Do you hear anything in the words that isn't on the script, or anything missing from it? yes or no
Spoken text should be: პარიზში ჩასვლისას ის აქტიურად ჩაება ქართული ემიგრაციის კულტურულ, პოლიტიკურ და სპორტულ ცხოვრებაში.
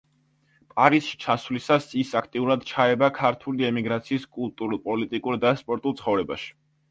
no